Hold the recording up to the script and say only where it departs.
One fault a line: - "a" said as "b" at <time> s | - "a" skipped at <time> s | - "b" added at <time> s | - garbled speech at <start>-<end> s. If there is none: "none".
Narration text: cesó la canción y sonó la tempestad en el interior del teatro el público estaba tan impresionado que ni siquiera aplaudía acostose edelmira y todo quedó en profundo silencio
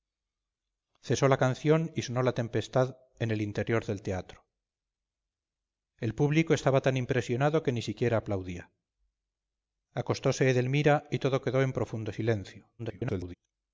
- garbled speech at 12.8-13.3 s